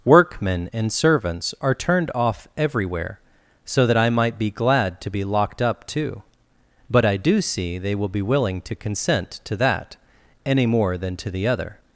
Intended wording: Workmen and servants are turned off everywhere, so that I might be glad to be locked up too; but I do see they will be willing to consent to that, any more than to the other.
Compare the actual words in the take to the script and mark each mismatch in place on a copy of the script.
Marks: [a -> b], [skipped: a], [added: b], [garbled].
Workmen and servants are turned off everywhere, so that I might be glad to be locked up too; but I do see they will be willing to consent to that, any more than to the other.